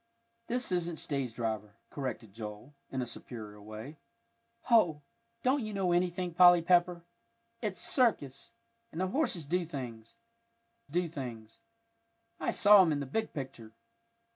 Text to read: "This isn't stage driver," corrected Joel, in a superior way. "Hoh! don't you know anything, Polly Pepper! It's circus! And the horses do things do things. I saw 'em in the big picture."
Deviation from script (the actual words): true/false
false